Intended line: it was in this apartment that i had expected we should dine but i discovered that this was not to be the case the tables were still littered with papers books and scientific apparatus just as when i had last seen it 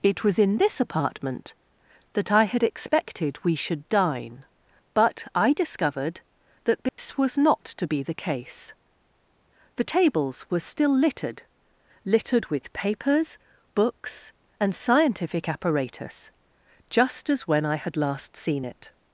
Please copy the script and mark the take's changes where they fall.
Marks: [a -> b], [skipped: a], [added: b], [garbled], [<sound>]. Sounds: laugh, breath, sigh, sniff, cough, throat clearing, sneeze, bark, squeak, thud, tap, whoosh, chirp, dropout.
it was in this apartment that i had expected we should dine but i discovered that this [dropout] was not to be the case the tables were still littered [added: littered] with papers books and scientific apparatus just as when i had last seen it